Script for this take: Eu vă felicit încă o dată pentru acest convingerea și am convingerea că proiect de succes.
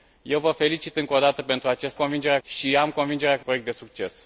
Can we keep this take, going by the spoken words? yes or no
yes